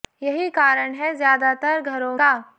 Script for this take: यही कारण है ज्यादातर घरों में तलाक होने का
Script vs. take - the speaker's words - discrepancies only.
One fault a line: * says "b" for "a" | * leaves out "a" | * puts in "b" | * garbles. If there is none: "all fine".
* leaves out "में तलाक होने"